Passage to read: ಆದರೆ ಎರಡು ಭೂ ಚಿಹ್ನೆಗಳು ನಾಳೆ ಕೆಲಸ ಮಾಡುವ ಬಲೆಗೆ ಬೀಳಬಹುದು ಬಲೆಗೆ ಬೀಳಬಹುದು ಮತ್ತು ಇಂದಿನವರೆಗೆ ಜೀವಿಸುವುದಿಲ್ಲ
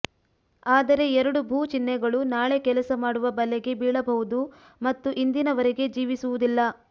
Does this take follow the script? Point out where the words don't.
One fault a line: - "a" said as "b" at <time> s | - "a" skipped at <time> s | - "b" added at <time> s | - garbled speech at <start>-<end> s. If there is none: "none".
- "ಬಲೆಗೆ ಬೀಳಬಹುದು" skipped at 4.4 s